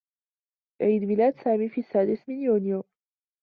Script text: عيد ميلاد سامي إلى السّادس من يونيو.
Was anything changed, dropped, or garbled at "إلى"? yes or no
yes